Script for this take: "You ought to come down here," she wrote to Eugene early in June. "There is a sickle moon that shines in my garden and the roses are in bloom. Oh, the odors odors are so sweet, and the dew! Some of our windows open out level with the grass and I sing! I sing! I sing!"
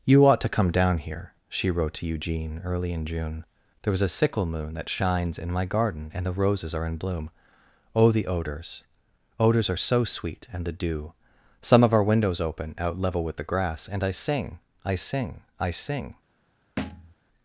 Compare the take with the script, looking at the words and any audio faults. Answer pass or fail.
fail